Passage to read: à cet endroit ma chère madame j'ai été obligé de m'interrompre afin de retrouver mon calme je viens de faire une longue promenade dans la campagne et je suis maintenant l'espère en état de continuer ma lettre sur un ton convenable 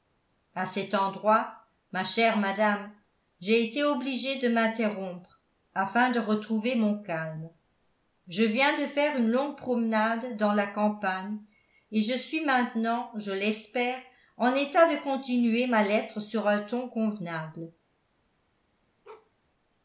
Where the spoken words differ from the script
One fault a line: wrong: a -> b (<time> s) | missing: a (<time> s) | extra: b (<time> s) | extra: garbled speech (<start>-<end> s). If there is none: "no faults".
extra: je (13.2 s)